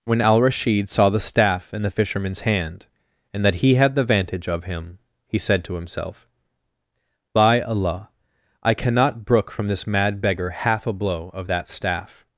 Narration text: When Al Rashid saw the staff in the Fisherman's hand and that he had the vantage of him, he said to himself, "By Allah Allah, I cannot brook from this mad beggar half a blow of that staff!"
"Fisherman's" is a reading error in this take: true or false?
false